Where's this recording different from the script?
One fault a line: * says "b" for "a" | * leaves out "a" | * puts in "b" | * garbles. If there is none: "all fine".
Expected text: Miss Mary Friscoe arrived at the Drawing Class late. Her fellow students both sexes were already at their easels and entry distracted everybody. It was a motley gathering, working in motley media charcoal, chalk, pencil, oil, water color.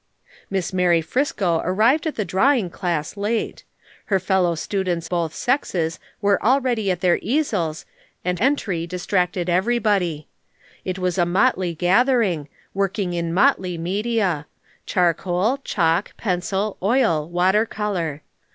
all fine